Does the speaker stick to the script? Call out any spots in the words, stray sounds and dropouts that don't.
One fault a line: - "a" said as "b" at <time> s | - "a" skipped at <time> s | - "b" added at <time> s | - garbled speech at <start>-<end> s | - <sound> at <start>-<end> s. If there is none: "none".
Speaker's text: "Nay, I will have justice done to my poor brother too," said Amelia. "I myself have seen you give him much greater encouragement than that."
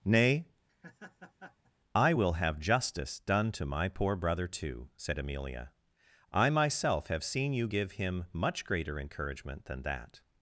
- laugh at 0.7-1.7 s